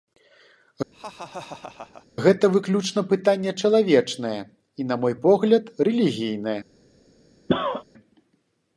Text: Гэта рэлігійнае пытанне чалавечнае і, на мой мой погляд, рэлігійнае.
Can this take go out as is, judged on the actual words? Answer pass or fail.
fail